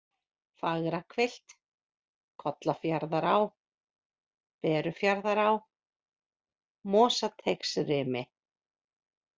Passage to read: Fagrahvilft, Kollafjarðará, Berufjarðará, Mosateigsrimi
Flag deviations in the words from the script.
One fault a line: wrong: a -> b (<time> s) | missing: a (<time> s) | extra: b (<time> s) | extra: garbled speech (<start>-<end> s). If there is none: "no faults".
no faults